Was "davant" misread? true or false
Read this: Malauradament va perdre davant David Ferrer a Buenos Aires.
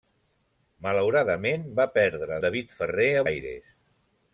true